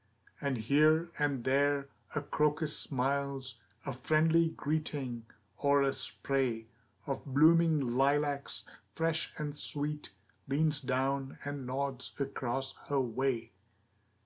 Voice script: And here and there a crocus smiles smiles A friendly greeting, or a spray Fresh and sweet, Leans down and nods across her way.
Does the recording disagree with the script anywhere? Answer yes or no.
yes